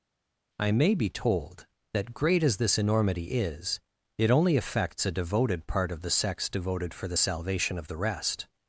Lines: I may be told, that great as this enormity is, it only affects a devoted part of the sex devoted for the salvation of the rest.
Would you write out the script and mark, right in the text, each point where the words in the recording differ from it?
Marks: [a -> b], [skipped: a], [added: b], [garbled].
I may be told, that great as this enormity is, it only affects a devoted part of the sex devoted for the salvation of the rest.